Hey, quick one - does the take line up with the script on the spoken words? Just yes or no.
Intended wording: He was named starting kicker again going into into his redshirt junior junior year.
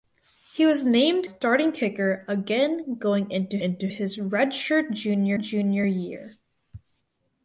yes